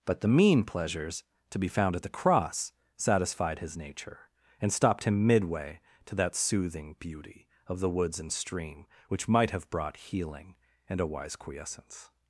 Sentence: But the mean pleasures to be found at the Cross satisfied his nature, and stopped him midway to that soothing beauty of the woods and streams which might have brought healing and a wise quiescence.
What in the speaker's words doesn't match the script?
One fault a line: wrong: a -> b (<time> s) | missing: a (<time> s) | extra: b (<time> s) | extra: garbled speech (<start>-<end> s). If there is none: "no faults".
wrong: streams -> stream (8.3 s)